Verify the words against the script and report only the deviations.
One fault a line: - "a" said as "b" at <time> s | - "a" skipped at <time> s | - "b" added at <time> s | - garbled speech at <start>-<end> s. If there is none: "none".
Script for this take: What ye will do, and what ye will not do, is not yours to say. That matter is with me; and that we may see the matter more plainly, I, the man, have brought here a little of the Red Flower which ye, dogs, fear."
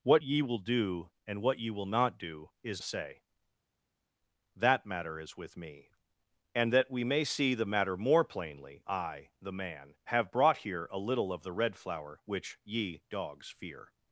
- "not yours to" skipped at 2.8 s